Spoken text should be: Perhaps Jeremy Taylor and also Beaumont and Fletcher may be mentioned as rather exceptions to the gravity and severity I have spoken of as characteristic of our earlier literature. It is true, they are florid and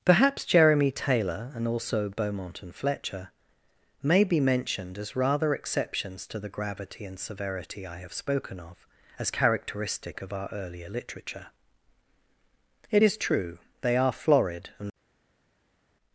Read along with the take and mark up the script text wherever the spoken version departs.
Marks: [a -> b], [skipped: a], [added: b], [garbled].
Perhaps Jeremy Taylor and also Beaumont and Fletcher may be mentioned as rather exceptions to the gravity and severity I have spoken of as characteristic of our earlier literature. It is true, they are florid and